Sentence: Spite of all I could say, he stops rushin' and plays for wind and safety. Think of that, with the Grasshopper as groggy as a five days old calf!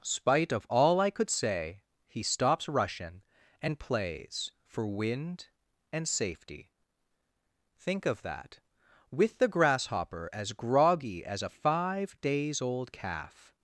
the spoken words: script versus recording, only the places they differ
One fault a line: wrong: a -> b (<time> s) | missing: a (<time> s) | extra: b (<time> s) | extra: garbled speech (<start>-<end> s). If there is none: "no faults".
no faults